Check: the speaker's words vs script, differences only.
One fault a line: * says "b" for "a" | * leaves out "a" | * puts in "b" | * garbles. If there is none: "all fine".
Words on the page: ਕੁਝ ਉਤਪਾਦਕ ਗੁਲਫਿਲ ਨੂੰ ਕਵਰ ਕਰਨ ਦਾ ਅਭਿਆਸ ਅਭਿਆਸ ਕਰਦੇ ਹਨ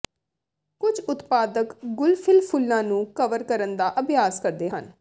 * puts in "ਫੁੱਲਾਂ"
* leaves out "ਅਭਿਆਸ"